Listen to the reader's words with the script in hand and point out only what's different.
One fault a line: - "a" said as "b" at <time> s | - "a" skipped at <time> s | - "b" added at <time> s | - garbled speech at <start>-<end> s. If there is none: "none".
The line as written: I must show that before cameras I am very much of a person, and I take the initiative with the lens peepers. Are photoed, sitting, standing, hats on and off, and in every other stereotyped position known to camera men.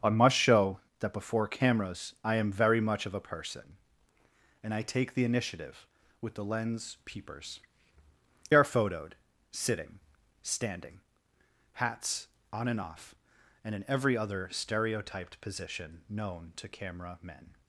none